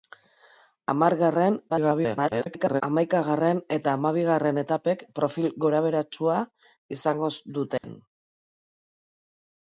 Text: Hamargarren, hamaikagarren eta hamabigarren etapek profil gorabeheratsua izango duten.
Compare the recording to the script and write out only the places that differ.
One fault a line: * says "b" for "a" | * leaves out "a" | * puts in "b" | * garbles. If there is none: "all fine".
* garbles